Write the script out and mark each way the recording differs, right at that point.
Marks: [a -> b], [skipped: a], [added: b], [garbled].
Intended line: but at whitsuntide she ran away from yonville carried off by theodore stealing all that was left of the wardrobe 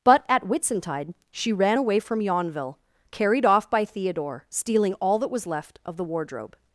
but at whitsuntide she ran away from yonville carried off by theodore stealing all that was left of the wardrobe